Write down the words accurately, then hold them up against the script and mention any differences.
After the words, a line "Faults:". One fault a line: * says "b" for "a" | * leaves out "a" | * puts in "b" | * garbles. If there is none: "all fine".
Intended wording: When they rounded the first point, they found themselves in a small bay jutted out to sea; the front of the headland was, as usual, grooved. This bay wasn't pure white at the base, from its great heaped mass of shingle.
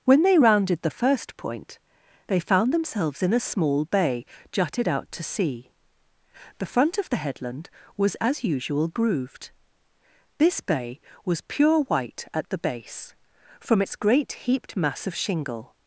When they rounded the first point, they found themselves in a small bay jutted out to sea; the front of the headland was, as usual, grooved. This bay was pure white at the base, from its great heaped mass of shingle.
Faults:
* says "was" for "wasn't"